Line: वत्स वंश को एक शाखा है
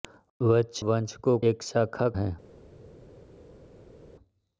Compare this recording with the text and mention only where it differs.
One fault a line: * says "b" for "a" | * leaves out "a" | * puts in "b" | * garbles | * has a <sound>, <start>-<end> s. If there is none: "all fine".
all fine